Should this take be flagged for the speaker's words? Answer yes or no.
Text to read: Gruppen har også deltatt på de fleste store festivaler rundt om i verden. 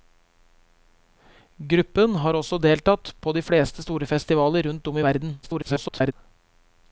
yes